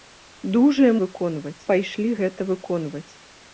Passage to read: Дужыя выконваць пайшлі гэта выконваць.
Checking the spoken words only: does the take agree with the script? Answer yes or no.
yes